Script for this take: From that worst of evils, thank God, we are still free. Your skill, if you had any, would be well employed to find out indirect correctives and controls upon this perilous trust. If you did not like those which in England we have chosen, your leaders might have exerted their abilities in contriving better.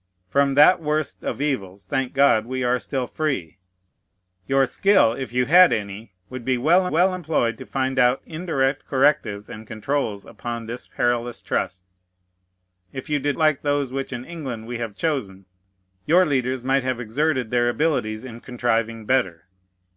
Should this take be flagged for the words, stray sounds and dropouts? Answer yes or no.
yes